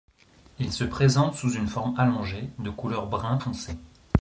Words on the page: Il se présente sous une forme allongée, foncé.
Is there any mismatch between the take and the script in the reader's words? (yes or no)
yes